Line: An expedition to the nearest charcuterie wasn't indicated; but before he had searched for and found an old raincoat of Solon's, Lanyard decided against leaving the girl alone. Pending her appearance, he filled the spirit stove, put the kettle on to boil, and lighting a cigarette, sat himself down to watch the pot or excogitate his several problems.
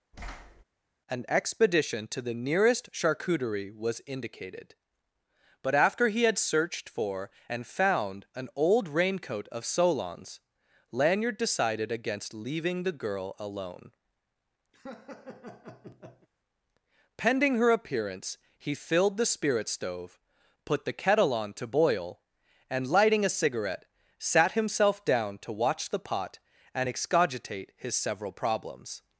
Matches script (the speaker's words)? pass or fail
fail